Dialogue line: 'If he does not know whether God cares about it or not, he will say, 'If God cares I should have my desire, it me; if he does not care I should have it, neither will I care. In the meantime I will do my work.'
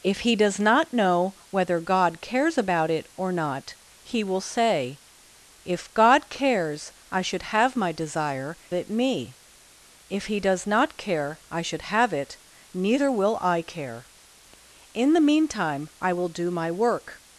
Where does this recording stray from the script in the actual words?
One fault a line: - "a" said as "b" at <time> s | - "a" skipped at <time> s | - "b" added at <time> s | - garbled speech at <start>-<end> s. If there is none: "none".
none